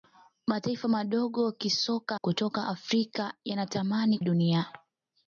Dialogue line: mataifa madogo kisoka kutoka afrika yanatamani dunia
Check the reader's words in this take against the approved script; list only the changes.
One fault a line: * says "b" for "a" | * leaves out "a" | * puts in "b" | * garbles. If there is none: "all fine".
all fine